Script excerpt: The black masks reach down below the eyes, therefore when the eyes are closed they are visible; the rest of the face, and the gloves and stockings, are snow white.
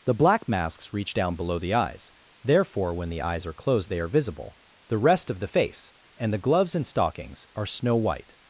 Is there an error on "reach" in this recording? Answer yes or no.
no